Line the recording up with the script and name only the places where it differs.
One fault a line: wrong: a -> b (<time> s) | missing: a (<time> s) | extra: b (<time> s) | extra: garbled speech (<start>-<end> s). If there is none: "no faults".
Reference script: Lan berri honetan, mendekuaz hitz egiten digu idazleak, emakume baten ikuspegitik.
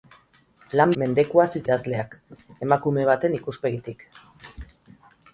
missing: berri honetan (0.9 s)
missing: egiten digu (1.6 s)